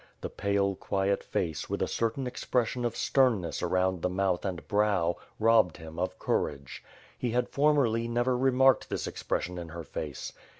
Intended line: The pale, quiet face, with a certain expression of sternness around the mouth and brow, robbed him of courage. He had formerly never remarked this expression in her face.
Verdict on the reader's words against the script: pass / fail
pass